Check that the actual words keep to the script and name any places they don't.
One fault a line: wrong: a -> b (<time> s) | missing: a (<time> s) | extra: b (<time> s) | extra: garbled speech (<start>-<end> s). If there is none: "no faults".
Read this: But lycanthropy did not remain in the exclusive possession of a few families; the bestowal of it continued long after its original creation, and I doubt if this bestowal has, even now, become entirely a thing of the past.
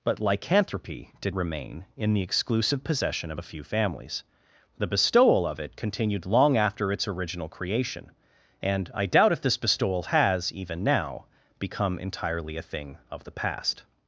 missing: not (1.4 s)